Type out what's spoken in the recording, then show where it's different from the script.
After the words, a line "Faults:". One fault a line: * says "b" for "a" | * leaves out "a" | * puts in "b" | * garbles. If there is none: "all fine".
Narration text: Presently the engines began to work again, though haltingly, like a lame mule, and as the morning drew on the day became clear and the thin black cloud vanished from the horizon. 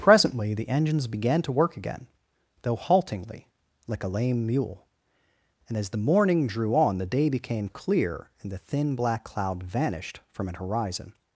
Presently the engines began to work again, though haltingly, like a lame mule, and as the morning drew on the day became clear and the thin black cloud vanished from an horizon.
Faults:
* says "an" for "the"